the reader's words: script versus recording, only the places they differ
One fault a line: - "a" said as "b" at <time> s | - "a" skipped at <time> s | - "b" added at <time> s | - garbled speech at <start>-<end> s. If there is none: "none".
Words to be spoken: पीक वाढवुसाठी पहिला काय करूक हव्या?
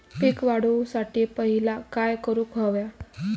none